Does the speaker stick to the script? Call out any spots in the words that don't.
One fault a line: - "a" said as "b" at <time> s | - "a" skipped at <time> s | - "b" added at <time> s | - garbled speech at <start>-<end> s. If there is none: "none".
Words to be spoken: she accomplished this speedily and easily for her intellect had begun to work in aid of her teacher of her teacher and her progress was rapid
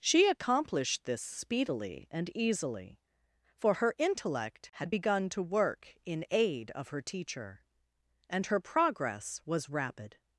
- "of her teacher" skipped at 7.6 s